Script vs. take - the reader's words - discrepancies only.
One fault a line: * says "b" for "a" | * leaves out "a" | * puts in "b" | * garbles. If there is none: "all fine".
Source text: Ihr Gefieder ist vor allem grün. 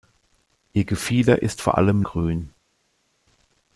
all fine